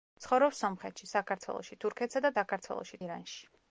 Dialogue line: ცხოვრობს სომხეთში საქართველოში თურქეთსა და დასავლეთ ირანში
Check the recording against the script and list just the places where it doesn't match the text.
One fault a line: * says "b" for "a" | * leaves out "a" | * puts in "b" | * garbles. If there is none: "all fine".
* says "საქართველოში" for "დასავლეთ"